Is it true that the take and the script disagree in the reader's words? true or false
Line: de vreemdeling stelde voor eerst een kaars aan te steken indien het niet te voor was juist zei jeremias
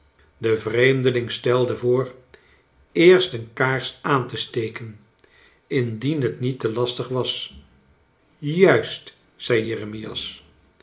true